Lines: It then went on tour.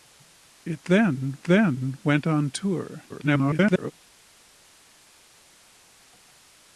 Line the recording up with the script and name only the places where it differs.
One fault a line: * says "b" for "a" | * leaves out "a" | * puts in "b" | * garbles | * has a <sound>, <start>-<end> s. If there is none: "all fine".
* puts in "then"
* garbles